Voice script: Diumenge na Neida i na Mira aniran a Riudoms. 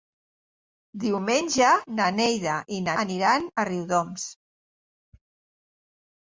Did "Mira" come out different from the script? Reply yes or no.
yes